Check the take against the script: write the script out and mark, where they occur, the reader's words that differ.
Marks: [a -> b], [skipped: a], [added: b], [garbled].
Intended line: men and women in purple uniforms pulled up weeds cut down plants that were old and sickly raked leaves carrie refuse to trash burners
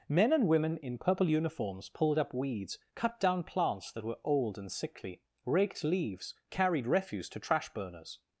men and women in purple uniforms pulled up weeds cut down plants that were old and sickly raked leaves [carrie -> carried] refuse to trash burners